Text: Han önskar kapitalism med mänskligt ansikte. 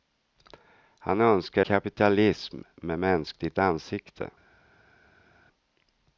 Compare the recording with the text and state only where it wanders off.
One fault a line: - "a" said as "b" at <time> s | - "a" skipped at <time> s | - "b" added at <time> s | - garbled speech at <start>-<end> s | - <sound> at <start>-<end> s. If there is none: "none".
none